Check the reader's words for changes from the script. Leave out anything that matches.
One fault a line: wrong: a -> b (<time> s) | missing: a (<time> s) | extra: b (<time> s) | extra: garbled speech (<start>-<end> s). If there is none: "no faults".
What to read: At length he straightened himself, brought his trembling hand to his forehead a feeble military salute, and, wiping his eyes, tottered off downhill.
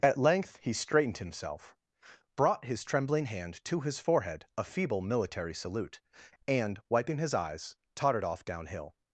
no faults